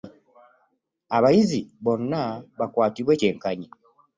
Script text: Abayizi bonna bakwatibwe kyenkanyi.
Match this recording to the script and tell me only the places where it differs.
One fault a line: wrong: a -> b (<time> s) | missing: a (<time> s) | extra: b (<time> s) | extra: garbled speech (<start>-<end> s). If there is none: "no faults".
no faults